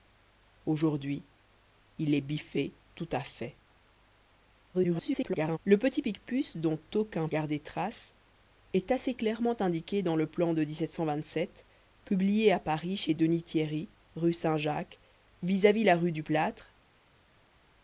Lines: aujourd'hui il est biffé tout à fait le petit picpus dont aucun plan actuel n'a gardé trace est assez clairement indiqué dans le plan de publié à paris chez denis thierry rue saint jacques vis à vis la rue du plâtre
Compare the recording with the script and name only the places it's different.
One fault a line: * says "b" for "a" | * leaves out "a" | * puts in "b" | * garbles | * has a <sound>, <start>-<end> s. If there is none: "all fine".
* garbles
* leaves out "plan actuel n'a"